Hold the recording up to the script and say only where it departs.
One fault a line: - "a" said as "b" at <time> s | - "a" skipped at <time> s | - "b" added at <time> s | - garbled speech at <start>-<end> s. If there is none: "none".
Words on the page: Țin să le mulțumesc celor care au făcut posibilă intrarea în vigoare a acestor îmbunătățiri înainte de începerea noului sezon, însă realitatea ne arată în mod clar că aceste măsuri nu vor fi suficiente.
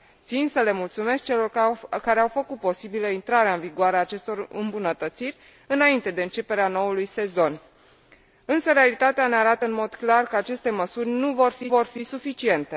- "vor fi" added at 11.7 s